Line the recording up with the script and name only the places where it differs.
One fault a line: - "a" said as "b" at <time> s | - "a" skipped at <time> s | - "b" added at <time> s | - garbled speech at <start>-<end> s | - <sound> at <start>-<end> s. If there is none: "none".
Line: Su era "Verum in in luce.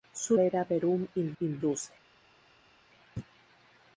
none